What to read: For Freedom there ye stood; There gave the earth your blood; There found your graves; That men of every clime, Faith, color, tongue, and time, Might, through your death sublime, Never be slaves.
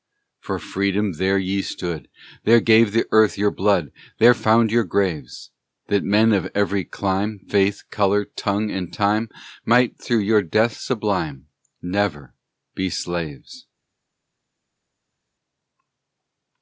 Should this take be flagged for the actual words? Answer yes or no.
no